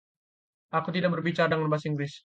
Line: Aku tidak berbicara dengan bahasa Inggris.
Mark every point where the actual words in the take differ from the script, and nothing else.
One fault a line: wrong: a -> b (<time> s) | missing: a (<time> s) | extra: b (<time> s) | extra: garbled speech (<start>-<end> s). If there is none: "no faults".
no faults